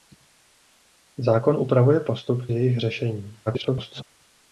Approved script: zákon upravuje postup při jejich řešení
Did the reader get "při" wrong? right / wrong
wrong